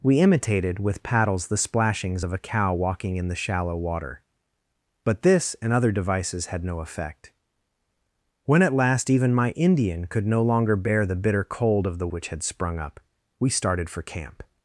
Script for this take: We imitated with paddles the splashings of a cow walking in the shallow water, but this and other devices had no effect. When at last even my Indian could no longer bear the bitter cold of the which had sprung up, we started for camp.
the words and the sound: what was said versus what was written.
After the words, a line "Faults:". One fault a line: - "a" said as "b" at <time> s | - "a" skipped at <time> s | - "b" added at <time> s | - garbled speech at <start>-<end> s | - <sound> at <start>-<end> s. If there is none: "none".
We imitated with paddles the splashings of a cow walking in the shallow water, but this and other devices had no effect. When at last even my Indian could no longer bear the bitter cold of the which had sprung up, we started for camp.
Faults:
none